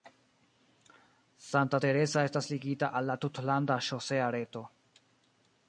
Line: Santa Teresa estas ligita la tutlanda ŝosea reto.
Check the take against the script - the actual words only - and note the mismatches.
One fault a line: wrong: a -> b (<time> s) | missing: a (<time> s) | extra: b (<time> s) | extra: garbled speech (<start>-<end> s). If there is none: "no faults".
extra: al (3.0 s)